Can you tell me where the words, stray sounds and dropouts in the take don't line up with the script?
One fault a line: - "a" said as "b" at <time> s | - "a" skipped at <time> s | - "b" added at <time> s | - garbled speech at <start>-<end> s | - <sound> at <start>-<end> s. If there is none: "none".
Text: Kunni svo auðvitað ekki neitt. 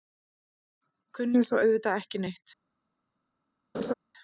- laugh at 3.7-3.9 s